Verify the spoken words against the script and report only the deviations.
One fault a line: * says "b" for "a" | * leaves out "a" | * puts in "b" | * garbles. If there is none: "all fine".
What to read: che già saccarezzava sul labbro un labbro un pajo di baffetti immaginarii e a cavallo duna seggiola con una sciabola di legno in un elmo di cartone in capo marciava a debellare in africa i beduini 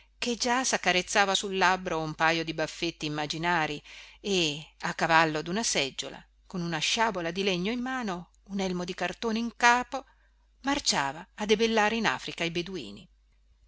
* leaves out "labbro un"
* puts in "mano"